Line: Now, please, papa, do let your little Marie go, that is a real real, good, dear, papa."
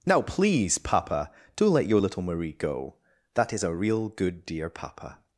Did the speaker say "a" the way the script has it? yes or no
yes